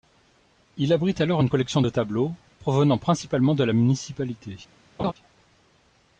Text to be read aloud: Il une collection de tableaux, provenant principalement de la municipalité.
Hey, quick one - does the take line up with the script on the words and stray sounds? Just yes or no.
no